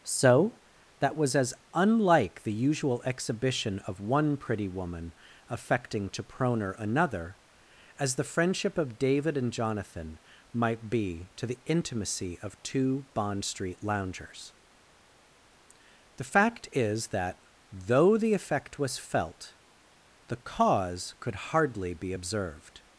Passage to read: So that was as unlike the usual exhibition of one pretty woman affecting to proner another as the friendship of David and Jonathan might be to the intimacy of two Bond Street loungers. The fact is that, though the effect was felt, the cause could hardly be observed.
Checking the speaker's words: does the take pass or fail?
pass